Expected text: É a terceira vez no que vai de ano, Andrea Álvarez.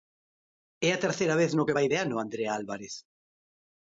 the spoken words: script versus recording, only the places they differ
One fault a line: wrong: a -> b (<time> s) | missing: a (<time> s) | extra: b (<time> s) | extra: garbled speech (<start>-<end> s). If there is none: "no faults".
no faults